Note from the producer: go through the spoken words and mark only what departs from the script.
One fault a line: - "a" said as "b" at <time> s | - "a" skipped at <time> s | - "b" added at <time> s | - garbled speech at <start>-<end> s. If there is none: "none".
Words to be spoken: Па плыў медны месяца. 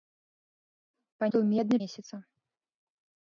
none